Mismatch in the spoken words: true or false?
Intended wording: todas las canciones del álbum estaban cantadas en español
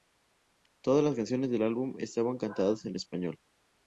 false